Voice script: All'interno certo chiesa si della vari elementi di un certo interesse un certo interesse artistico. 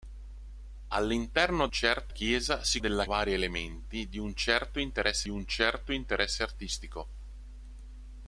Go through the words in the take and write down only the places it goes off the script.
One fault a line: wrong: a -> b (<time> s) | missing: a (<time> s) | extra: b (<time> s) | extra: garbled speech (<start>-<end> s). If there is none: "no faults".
no faults